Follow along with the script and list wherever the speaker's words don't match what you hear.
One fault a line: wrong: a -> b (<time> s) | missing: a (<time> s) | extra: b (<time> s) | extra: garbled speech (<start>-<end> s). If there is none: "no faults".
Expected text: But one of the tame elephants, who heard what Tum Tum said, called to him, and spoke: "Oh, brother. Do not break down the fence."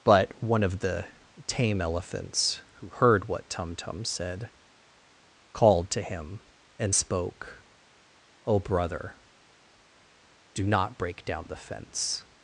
no faults